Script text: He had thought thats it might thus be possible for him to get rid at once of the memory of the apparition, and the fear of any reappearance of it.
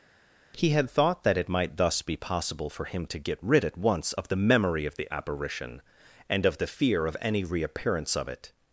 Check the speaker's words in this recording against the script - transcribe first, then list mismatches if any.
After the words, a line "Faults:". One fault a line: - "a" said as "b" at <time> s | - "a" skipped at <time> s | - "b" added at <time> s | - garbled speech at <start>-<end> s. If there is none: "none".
He had thought that it might thus be possible for him to get rid at once of the memory of the apparition, and of the fear of any reappearance of it.
Faults:
- "thats" said as "that" at 1.2 s
- "of" added at 6.5 s